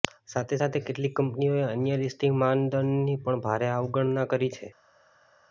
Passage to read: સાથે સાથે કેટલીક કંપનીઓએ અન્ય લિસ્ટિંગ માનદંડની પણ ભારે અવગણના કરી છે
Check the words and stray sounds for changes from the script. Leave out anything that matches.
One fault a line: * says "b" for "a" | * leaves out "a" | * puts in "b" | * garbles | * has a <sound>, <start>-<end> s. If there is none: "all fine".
all fine